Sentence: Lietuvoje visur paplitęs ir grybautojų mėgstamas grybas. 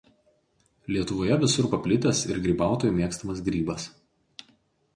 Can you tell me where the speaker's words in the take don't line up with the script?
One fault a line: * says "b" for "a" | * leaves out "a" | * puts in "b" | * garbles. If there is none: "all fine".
all fine